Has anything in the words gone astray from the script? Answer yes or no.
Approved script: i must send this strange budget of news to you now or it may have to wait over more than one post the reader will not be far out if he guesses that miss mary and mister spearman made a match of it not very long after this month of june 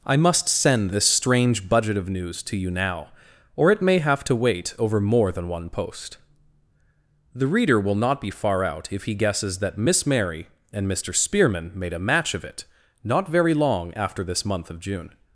no